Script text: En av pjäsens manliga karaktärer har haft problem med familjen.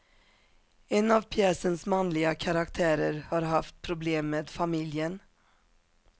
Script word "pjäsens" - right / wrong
right